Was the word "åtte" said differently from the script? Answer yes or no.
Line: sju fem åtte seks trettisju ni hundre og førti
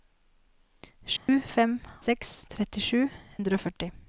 yes